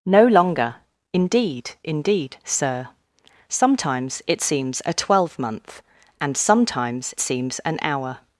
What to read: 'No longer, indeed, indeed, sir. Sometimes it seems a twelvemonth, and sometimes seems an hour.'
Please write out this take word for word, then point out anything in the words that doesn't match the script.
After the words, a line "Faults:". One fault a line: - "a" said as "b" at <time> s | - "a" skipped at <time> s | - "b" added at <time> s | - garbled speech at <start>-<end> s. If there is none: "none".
'No longer, indeed, indeed, sir. Sometimes it seems a twelvemonth, and sometimes seems an hour.'
Faults:
none